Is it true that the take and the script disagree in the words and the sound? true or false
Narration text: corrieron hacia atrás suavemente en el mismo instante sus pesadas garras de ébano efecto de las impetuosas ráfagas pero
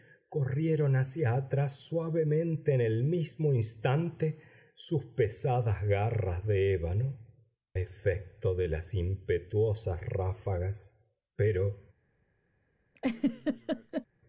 true